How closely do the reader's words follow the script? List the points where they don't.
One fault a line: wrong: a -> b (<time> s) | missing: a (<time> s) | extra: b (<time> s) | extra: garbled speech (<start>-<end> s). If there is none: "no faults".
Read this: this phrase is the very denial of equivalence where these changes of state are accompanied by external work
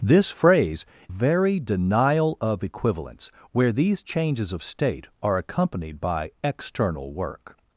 missing: is the (0.8 s)